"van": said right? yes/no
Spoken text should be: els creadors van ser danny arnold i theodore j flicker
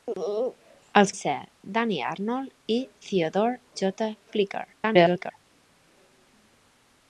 no